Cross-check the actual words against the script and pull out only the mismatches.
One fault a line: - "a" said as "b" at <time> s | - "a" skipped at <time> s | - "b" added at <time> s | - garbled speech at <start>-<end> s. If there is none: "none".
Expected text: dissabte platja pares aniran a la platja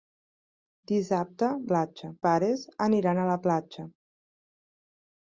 none